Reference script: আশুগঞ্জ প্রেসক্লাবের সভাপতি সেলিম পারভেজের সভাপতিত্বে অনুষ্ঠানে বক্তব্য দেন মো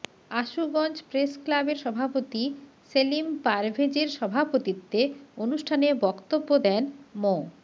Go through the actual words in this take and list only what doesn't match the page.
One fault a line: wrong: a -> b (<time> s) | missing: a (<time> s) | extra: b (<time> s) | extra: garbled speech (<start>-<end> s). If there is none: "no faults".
no faults